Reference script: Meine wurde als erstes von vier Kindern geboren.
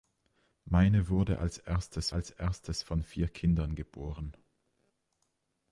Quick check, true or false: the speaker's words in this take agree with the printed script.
false